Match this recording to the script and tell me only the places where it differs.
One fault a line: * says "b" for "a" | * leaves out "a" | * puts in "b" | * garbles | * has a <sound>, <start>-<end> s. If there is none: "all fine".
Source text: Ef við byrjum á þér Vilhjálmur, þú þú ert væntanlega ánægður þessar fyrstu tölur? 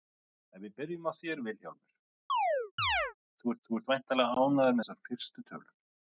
* has a chirp, 2.3-3.1 s